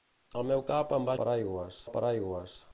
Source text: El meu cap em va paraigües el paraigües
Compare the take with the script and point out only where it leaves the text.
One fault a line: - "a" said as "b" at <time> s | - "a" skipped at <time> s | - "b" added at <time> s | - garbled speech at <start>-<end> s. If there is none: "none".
none